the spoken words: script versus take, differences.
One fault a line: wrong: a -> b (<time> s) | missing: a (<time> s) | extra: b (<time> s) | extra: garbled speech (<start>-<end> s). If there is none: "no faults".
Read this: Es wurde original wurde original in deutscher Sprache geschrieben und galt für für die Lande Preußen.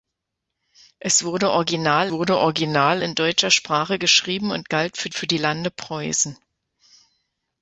no faults